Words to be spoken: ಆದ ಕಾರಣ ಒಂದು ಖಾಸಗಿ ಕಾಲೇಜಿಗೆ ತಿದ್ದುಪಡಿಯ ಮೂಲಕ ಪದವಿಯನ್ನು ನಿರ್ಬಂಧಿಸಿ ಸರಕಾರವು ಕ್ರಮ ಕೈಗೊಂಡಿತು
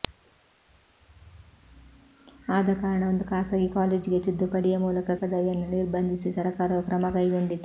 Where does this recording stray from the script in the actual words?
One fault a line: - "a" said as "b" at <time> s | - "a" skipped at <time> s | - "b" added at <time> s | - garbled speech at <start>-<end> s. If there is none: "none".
none